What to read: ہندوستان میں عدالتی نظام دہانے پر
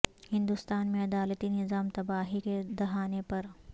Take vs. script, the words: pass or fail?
fail